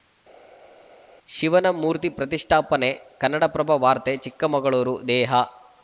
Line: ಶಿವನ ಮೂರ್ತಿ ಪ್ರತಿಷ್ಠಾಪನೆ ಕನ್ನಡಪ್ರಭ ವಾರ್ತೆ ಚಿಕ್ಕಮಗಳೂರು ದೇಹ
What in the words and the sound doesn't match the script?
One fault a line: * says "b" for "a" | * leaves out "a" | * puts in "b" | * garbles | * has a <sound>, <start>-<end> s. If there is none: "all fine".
all fine